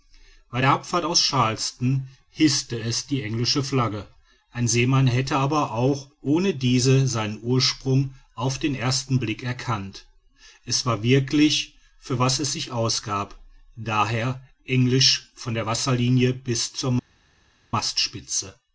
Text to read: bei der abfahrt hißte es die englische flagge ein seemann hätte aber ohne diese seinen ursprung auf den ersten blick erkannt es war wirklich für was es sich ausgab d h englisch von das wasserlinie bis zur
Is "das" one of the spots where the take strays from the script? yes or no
yes